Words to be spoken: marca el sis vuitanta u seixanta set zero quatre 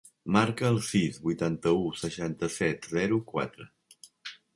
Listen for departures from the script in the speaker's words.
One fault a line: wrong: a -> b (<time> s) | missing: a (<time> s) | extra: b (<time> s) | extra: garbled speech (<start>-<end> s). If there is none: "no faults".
no faults